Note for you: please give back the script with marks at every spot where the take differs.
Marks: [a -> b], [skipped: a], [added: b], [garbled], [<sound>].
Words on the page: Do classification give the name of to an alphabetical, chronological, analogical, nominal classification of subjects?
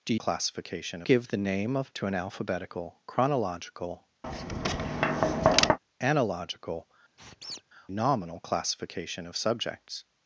Do classification give the name of to an alphabetical, chronological, [tap] analogical, [squeak] nominal classification of subjects?